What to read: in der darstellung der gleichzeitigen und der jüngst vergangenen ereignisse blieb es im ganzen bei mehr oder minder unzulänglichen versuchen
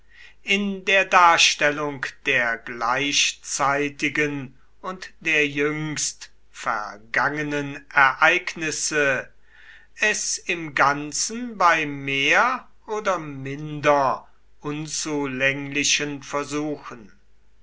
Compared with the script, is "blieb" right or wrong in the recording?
wrong